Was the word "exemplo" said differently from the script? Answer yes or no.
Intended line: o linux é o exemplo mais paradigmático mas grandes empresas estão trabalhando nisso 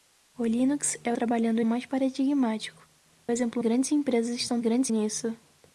yes